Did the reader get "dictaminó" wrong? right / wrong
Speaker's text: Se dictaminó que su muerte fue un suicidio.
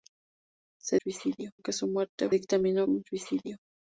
wrong